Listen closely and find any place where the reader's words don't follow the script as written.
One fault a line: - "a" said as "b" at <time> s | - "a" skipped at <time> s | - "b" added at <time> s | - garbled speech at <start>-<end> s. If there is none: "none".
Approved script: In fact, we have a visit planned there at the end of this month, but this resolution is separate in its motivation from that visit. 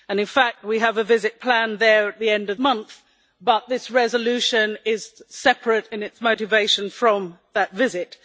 - "this" skipped at 2.6 s